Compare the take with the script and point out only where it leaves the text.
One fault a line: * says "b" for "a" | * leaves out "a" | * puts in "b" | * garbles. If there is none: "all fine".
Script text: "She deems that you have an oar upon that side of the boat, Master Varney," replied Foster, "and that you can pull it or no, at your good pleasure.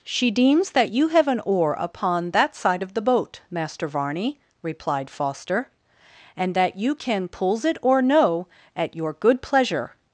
* says "pulls" for "pull"